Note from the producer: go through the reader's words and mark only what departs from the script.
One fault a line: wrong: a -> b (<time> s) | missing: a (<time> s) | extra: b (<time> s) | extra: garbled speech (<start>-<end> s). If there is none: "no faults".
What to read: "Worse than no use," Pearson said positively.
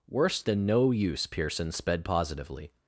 wrong: said -> sped (1.7 s)